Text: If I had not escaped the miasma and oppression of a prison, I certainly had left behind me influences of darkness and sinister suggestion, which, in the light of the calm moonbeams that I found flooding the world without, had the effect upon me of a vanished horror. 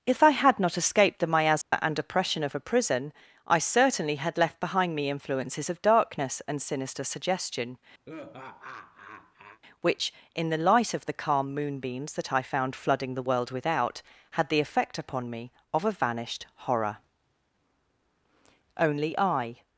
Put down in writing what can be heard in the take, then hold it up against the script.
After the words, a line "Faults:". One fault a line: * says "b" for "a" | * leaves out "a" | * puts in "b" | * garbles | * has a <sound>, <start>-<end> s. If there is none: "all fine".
If I had not escaped the miasma and oppression of a prison, I certainly had left behind me influences of darkness and sinister suggestion, which, in the light of the calm moonbeams that I found flooding the world without, had the effect upon me of a vanished horror. Only I
Faults:
* has a dropout, 1.6-1.7 s
* has a laugh, 8.0-9.6 s
* puts in "Only I"